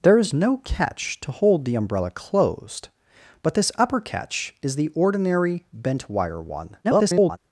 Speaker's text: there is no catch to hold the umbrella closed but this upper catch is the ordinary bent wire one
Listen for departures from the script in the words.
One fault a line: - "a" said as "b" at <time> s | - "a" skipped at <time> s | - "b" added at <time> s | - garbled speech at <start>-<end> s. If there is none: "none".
- garbled speech at 6.8-7.4 s